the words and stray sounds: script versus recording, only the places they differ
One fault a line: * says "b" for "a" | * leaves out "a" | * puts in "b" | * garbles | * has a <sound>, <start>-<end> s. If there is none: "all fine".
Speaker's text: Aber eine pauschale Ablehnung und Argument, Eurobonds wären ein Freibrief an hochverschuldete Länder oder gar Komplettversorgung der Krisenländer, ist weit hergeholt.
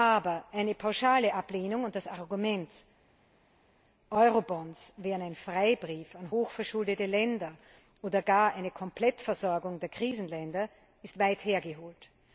* puts in "das"
* puts in "eine"